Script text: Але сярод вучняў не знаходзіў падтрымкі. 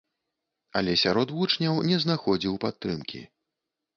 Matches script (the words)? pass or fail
pass